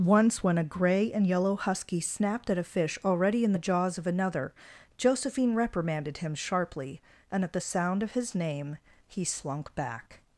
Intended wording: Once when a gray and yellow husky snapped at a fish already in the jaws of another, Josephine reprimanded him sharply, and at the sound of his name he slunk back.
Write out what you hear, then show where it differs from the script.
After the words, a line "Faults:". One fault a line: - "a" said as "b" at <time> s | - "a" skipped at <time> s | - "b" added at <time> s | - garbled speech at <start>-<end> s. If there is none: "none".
Once when a gray and yellow husky snapped at a fish already in the jaws of another, Josephine reprimanded him sharply, and at the sound of his name he slunk back.
Faults:
none